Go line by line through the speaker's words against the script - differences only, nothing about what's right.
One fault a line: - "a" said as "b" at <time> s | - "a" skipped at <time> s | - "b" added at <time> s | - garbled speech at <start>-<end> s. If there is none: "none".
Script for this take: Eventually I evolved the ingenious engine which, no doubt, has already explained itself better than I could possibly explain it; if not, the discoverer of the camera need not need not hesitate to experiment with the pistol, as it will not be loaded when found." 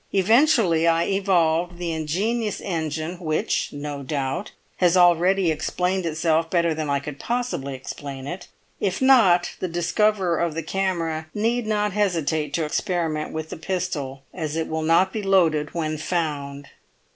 - "need not" skipped at 11.9 s